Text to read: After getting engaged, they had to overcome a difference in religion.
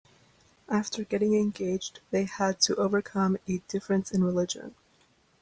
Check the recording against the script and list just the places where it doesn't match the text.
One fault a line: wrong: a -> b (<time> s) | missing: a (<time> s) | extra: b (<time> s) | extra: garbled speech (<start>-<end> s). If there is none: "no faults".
no faults